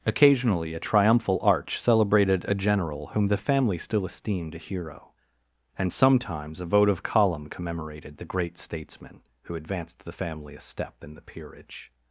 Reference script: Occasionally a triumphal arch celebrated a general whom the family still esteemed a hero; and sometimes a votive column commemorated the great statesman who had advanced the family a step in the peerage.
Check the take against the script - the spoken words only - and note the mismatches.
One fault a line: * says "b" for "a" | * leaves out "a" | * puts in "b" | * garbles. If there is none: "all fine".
* leaves out "had"